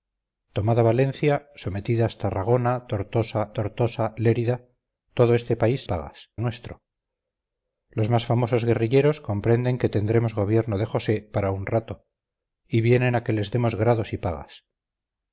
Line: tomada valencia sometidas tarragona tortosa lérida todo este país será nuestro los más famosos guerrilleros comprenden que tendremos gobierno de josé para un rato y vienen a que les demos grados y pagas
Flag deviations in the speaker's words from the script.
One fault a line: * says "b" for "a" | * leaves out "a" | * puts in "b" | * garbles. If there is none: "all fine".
* puts in "tortosa"
* says "pagas" for "será"